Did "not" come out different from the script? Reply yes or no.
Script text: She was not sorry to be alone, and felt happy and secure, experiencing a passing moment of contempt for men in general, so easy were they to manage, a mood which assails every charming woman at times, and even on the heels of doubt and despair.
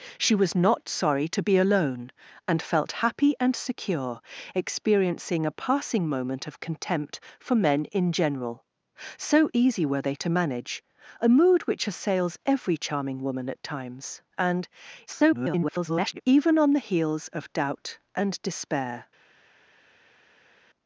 no